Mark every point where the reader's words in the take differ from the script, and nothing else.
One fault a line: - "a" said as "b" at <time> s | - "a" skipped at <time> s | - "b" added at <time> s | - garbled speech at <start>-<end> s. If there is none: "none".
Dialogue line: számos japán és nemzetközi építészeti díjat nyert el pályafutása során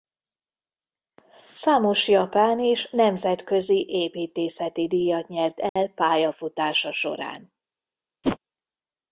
none